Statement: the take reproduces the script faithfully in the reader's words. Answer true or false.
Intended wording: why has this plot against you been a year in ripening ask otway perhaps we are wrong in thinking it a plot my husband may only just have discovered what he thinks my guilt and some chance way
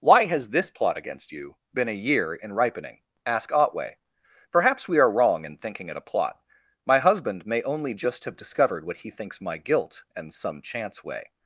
true